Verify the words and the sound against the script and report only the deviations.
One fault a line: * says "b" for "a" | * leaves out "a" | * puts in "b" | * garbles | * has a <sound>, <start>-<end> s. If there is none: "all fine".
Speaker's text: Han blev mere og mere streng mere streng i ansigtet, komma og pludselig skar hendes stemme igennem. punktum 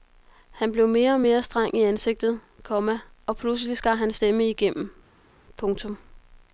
* leaves out "mere streng"
* says "hans" for "hendes"